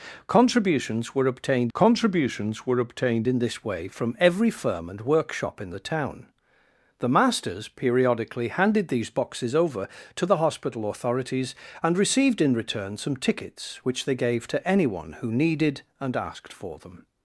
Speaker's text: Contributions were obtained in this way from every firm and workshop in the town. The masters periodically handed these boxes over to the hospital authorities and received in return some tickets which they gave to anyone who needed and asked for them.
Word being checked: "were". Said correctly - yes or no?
yes